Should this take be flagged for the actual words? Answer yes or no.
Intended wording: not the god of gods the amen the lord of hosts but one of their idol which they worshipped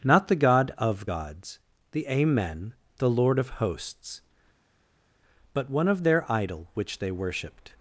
no